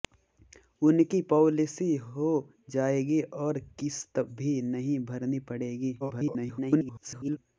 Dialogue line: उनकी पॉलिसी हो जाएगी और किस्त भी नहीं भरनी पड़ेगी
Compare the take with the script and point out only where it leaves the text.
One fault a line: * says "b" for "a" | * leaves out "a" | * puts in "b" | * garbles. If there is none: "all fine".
* garbles